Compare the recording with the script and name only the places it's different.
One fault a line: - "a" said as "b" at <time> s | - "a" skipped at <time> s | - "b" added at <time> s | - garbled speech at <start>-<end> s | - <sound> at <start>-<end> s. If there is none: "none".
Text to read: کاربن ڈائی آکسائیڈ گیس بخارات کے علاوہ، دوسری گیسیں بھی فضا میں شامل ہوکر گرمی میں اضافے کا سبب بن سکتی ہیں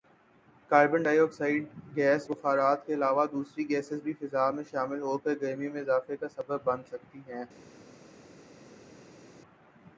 none